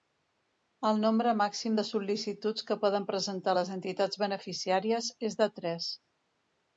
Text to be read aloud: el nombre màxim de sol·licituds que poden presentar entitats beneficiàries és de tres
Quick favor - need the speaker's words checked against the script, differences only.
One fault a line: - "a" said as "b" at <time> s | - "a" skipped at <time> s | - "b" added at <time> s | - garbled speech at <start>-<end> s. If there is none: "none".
- "les" added at 3.6 s